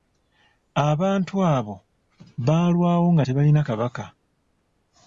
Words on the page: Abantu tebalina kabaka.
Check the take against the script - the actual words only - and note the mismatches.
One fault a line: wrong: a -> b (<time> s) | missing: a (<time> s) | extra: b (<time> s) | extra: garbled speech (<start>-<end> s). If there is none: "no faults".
extra: abo baalwawo nga (1.6 s)